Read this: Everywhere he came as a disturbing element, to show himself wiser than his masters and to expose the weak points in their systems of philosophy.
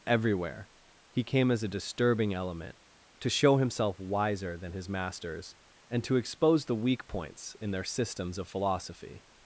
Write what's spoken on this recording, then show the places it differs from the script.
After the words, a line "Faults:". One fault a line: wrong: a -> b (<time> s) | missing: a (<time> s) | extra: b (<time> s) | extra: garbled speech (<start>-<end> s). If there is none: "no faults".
Everywhere he came as a disturbing element, to show himself wiser than his masters and to expose the weak points in their systems of philosophy.
Faults:
no faults